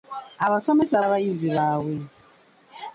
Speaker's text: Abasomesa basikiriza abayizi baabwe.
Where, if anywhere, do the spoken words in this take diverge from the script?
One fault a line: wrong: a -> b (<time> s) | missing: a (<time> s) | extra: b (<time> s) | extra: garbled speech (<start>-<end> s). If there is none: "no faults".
missing: basikiriza (1.1 s)